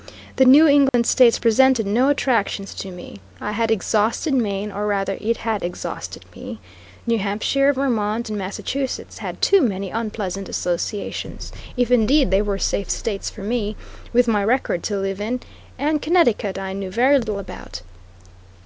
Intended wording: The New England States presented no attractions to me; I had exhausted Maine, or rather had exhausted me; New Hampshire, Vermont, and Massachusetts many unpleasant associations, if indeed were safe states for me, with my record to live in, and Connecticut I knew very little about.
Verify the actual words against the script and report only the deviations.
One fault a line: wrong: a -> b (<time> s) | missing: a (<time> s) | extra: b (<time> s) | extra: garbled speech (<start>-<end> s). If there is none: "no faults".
extra: it (5.2 s)
extra: had too (9.2 s)
extra: they (12.3 s)